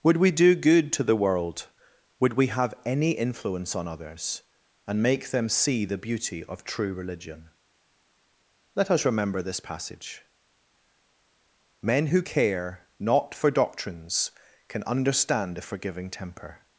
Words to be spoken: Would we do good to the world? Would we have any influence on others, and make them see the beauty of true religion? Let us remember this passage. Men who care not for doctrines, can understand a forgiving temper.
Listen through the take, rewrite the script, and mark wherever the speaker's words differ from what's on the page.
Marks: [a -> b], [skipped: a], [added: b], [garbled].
Would we do good to the world? Would we have any influence on others, and make them see the beauty of true religion? Let us remember this passage. Men who care not for doctrines, can understand a forgiving temper.